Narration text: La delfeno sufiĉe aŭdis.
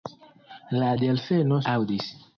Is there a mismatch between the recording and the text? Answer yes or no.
yes